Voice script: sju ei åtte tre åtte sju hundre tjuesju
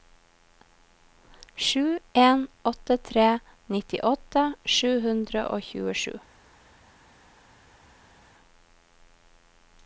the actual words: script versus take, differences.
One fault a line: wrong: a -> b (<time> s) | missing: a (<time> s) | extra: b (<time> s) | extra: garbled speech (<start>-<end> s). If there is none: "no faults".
wrong: ei -> en (2.1 s)
wrong: åtte -> nittiåtte (3.7 s)
extra: og (5.6 s)